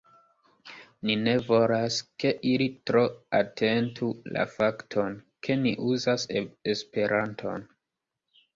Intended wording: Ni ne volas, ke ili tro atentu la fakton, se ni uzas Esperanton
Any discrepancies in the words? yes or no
yes